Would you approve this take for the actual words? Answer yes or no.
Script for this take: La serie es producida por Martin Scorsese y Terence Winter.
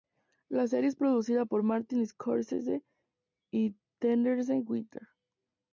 yes